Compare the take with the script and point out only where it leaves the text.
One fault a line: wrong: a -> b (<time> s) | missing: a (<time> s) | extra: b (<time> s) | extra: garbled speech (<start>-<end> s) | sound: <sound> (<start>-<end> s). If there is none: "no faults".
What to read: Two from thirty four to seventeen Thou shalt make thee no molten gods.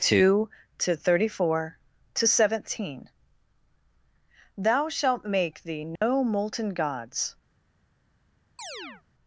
wrong: from -> to (0.8 s)
sound: dropout (6.0-6.0 s)
sound: chirp (8.6-9.0 s)